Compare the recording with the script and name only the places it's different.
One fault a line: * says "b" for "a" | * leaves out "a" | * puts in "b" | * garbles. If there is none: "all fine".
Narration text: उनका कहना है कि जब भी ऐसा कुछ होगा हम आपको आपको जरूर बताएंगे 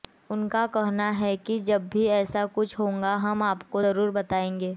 * leaves out "आपको"